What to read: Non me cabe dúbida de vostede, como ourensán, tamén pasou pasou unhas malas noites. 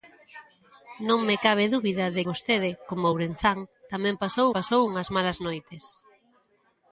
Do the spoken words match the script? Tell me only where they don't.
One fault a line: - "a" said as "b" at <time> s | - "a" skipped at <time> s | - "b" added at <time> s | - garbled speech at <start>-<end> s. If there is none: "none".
none